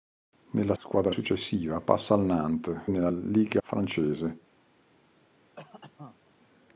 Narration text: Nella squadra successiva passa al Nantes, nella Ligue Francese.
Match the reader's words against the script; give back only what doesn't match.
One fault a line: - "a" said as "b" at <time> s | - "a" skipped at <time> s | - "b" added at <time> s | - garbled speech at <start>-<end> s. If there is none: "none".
none